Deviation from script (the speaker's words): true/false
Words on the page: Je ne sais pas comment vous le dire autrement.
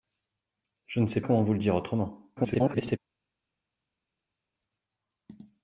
true